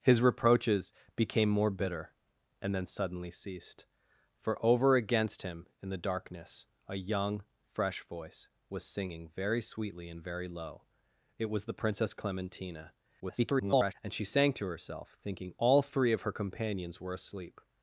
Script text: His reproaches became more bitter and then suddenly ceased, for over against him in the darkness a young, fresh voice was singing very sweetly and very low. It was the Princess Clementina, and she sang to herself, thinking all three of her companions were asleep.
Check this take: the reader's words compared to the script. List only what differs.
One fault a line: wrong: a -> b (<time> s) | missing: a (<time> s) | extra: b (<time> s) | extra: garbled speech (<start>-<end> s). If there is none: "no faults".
extra: garbled speech (13.2-13.9 s)